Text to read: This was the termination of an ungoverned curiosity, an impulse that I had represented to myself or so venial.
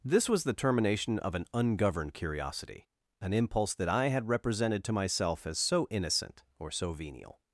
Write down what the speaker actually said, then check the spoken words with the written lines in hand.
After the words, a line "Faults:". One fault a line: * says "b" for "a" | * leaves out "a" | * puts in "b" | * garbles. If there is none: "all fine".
This was the termination of an ungoverned curiosity, an impulse that I had represented to myself as so innocent or so venial.
Faults:
* puts in "as so innocent"